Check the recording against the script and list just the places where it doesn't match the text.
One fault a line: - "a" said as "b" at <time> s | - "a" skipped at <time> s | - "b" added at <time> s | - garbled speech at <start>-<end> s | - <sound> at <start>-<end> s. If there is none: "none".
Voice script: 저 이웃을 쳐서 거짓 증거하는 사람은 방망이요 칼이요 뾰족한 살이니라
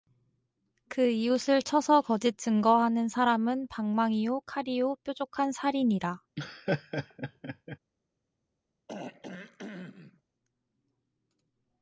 - "저" said as "그" at 0.9 s
- laugh at 6.4-7.8 s
- throat clearing at 8.9-10.2 s